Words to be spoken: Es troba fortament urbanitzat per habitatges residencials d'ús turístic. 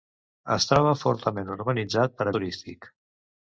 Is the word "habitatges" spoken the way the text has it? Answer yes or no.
no